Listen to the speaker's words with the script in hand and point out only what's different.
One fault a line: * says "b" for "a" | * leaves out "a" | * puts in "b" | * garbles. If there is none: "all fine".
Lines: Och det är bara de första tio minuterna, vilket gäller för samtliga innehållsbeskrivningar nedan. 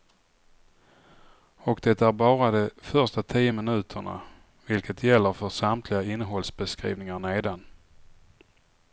all fine